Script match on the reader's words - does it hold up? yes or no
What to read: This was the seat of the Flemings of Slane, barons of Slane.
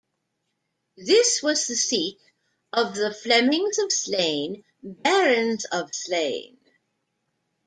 yes